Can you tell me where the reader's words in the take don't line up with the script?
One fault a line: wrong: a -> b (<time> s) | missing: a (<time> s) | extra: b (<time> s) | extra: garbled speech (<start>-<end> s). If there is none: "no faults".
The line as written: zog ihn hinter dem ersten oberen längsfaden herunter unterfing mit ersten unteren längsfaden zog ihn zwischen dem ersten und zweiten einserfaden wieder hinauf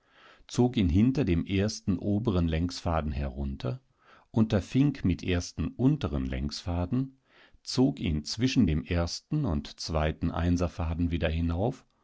no faults